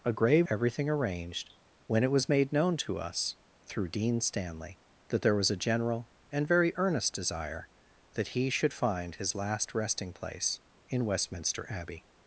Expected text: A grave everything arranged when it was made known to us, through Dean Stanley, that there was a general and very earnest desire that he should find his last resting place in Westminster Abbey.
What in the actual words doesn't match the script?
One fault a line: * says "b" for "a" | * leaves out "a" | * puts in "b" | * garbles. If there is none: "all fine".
all fine